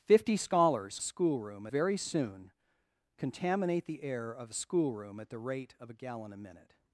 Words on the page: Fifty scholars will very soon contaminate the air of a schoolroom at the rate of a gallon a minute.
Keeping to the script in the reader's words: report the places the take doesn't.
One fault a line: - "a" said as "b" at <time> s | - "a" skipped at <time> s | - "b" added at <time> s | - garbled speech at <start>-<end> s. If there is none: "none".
- "will" said as "schoolroom" at 1.0 s